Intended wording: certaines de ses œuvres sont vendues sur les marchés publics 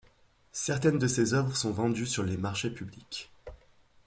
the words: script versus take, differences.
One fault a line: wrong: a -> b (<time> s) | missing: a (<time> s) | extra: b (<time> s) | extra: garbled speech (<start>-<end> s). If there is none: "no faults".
no faults